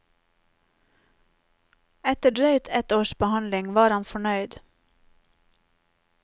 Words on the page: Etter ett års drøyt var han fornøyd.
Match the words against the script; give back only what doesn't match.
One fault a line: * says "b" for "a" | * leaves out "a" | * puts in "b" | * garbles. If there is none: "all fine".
* puts in "drøyt"
* says "behandling" for "drøyt"